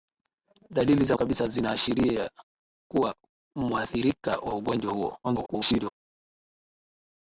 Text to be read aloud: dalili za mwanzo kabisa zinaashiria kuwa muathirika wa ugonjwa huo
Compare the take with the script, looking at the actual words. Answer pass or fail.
fail